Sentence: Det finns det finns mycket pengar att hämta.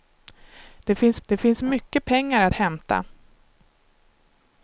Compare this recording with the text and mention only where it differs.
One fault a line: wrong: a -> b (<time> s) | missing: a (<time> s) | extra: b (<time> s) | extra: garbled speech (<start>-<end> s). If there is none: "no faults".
no faults